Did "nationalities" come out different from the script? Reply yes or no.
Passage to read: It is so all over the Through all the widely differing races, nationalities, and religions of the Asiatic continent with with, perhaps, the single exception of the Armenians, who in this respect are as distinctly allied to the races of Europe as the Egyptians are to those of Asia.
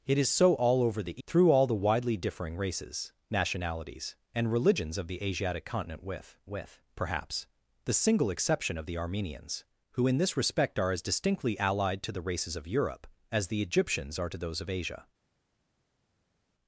no